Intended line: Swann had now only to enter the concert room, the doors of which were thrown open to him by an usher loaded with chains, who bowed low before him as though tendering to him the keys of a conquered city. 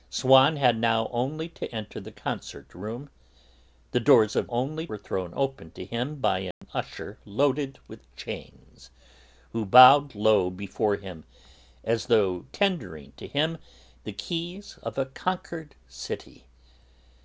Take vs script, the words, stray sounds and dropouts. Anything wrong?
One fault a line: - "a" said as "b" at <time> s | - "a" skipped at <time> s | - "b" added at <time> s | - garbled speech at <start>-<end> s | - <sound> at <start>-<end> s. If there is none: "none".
- "which" said as "only" at 4.5 s
- dropout at 6.5-6.6 s